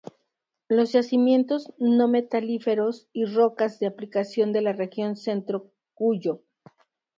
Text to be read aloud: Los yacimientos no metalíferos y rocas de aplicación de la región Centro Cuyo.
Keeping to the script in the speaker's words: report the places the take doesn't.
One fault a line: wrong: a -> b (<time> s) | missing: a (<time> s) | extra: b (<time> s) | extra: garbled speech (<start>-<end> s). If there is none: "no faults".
no faults